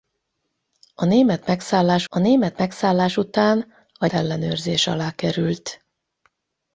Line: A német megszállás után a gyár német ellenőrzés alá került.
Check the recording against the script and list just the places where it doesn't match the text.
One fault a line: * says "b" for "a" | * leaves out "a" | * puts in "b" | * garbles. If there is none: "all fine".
* puts in "a német megszállás"
* leaves out "gyár német"